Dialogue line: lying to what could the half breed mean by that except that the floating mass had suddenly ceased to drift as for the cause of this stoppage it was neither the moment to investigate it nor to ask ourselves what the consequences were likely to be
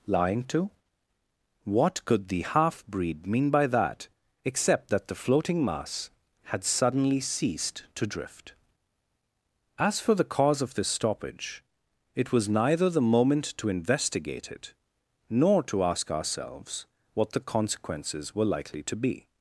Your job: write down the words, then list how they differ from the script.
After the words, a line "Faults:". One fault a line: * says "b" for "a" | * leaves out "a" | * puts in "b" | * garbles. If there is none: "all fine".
lying to what could the half breed mean by that except that the floating mass had suddenly ceased to drift as for the cause of this stoppage it was neither the moment to investigate it nor to ask ourselves what the consequences were likely to be
Faults:
all fine